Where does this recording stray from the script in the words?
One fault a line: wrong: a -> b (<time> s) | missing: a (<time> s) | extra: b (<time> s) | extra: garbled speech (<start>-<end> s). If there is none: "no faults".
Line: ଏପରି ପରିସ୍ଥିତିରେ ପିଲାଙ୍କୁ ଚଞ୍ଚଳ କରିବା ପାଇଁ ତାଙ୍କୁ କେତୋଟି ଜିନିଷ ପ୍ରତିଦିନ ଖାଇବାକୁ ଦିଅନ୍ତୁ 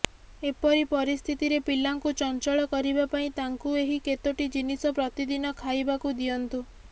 extra: ଏହି (3.8 s)